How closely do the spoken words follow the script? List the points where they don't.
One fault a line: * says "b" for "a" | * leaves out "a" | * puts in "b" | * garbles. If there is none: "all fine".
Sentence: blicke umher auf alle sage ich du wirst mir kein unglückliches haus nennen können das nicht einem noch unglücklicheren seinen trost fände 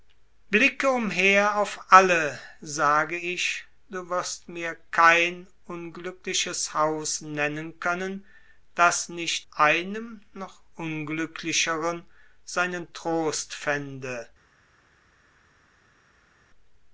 all fine